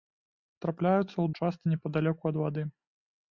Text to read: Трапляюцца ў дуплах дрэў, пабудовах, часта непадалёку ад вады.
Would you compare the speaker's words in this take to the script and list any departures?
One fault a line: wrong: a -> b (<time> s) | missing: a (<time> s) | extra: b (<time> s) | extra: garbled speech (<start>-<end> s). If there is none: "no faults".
missing: дуплах дрэў пабудовах (1.2 s)